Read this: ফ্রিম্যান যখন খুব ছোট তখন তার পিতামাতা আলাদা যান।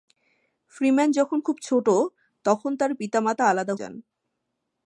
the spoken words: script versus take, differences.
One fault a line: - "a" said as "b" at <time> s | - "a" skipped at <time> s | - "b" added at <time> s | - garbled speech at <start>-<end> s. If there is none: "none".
none